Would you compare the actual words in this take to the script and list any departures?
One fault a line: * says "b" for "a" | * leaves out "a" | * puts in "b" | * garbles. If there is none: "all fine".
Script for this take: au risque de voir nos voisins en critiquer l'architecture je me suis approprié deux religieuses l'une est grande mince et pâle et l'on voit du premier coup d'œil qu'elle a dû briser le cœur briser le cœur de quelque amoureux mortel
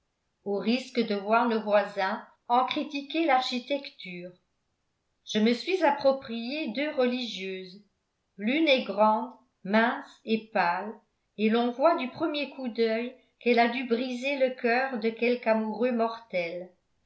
* leaves out "briser le cœur"